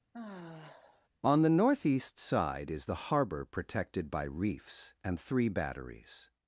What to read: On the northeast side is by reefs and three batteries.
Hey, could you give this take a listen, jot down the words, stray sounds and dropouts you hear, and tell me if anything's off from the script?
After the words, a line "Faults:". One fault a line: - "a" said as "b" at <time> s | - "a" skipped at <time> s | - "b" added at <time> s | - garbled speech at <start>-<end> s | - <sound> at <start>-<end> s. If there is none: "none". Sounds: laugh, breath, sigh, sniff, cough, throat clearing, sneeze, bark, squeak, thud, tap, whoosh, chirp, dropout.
On the northeast side is the harbor protected by reefs and three batteries.
Faults:
- sigh at 0.1-1.1 s
- "the harbor protected" added at 2.8 s